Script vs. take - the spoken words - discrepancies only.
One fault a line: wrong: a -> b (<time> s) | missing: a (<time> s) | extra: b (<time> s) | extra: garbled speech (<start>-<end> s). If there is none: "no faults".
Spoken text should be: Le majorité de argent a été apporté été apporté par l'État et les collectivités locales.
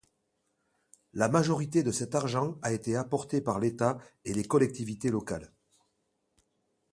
wrong: Le -> La (1.1 s)
extra: cet (1.9 s)
missing: été apporté (3.4 s)